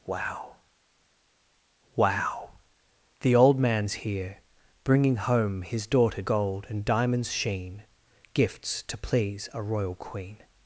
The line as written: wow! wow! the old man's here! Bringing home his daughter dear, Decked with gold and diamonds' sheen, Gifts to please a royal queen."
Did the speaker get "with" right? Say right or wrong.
wrong